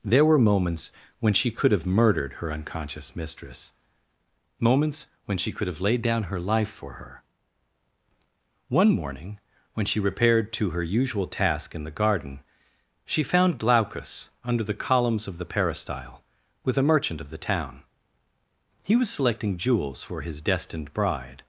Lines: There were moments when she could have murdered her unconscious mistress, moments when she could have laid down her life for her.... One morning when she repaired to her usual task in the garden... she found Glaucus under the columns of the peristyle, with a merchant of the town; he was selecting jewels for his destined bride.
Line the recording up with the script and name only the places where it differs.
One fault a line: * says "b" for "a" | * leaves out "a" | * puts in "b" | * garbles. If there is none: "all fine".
all fine